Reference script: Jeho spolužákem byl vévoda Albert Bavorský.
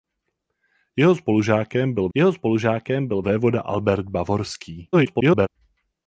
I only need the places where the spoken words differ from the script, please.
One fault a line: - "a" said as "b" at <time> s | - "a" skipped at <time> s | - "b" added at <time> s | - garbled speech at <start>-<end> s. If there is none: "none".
- "jeho spolužákem byl" added at 2.1 s
- garbled speech at 4.9-5.5 s